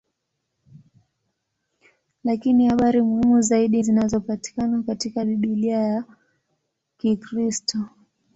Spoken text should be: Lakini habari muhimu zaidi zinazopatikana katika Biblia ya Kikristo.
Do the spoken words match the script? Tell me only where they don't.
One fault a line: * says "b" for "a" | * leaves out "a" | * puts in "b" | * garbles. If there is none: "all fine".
all fine